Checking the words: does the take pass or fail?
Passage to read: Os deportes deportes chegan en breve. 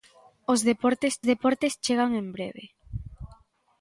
pass